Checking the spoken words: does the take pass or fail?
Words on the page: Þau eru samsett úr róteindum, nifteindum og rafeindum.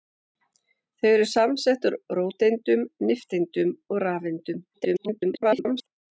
fail